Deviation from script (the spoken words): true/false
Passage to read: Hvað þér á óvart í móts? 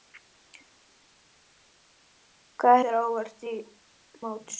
false